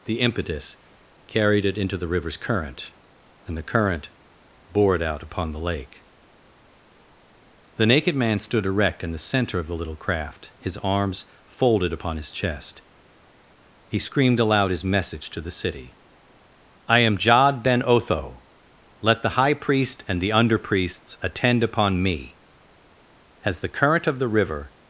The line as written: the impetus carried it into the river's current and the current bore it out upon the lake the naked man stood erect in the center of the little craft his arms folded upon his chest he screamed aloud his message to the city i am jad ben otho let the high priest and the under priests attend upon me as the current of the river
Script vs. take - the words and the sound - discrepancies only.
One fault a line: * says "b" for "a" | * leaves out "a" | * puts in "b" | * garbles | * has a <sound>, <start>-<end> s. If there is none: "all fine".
all fine